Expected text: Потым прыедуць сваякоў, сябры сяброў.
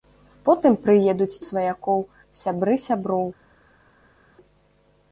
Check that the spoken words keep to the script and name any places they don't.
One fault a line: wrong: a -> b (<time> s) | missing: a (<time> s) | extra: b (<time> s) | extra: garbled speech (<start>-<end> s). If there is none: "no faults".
no faults